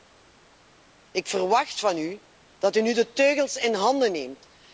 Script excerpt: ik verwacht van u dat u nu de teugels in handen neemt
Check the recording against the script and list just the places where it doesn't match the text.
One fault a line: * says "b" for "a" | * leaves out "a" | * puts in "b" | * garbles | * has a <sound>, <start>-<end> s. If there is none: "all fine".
all fine